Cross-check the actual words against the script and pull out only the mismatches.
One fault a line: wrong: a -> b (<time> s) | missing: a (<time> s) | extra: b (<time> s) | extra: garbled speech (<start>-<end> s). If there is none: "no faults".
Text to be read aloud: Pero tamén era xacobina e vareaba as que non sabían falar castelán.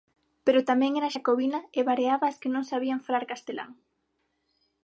no faults